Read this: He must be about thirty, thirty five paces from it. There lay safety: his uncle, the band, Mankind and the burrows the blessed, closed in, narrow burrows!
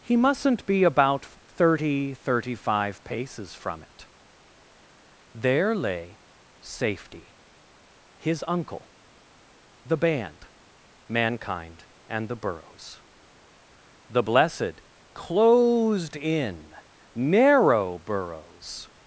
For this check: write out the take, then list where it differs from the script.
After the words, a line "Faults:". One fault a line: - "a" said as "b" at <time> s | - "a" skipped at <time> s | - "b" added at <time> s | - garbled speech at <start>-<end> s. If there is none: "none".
He mustn't be about thirty, thirty five paces from it. There lay safety: his uncle, the band, Mankind and the burrows the blessed, closed in, narrow burrows!
Faults:
- "must" said as "mustn't" at 0.2 s